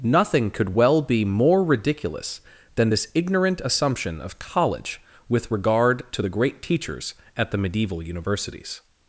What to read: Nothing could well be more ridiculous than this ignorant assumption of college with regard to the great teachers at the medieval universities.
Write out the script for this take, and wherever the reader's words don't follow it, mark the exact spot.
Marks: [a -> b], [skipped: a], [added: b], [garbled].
Nothing could well be more ridiculous than this ignorant assumption of college with regard to the great teachers at the medieval universities.